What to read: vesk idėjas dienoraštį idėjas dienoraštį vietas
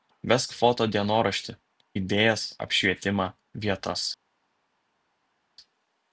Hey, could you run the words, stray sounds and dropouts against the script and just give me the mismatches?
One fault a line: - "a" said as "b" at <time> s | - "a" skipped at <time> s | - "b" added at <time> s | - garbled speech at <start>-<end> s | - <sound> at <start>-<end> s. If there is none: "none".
- "idėjas" said as "foto" at 0.6 s
- "dienoraštį" said as "apšvietimą" at 2.7 s